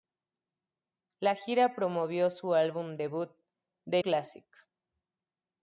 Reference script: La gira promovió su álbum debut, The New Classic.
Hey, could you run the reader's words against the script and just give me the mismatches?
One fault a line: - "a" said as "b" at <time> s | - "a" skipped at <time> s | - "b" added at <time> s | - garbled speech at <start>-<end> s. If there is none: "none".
- "New" skipped at 4.0 s